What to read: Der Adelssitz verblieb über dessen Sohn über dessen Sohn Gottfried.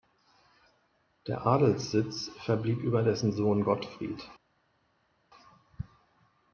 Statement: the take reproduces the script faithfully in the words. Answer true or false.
false